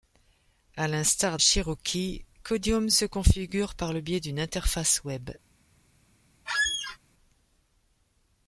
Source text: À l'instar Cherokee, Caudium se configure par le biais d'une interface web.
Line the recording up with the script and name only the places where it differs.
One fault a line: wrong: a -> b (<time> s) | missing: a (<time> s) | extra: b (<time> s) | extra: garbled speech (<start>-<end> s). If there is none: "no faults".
no faults